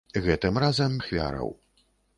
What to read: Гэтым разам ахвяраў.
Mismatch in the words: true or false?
false